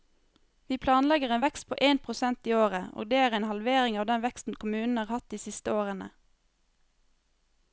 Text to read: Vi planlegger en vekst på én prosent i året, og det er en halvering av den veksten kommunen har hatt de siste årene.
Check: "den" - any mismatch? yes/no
no